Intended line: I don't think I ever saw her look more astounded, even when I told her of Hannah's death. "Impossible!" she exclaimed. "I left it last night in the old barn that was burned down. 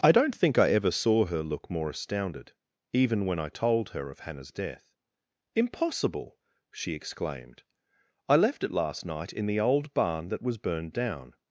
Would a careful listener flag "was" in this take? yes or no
no